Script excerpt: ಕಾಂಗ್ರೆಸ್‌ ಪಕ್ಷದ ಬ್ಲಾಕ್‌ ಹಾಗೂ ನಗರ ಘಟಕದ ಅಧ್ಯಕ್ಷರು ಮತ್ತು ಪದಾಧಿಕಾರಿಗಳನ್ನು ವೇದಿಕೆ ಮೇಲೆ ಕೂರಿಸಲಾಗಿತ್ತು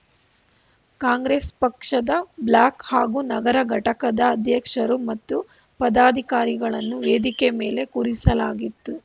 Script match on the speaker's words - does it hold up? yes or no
yes